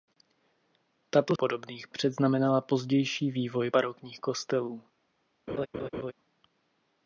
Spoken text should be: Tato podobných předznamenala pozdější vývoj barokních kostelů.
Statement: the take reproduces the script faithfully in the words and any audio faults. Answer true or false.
false